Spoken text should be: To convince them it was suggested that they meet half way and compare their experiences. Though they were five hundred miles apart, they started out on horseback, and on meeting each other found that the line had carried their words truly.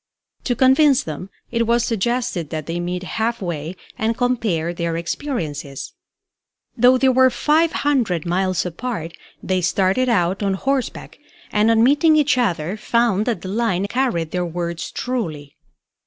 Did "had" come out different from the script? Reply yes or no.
yes